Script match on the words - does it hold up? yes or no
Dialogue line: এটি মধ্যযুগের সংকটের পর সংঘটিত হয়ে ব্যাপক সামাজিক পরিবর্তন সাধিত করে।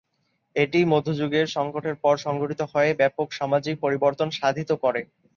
yes